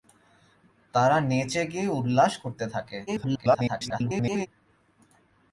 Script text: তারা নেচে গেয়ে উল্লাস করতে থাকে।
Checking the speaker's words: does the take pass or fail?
fail